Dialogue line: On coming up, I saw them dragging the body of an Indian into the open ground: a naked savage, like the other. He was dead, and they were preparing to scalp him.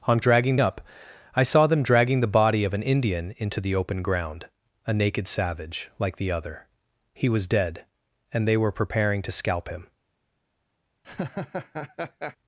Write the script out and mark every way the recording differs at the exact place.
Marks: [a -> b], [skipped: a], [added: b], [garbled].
On [coming -> dragging] up, I saw them dragging the body of an Indian into the open ground: a naked savage, like the other. He was dead, and they were preparing to scalp him.